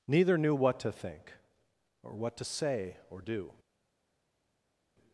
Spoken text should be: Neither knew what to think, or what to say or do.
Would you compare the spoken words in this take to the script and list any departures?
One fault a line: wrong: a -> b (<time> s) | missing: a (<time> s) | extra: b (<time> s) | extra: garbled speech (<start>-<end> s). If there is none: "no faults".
no faults